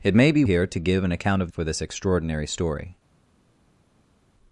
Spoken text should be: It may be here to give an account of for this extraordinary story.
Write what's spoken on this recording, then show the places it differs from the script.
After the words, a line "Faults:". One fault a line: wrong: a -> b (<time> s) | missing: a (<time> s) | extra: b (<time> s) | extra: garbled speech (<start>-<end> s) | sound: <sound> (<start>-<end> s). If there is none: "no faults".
It may be here to give an account of for this extraordinary story.
Faults:
no faults